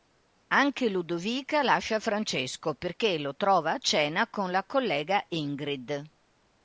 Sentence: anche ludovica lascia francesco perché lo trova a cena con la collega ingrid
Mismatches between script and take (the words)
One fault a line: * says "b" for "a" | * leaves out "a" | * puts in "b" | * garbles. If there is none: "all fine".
all fine